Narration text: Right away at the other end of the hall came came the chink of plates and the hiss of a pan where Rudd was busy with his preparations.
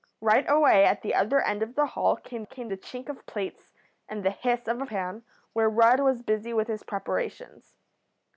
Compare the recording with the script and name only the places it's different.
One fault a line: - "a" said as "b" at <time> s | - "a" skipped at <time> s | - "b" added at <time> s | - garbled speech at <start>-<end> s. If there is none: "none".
none